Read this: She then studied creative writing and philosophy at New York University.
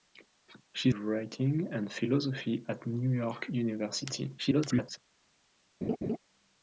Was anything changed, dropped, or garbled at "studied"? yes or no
yes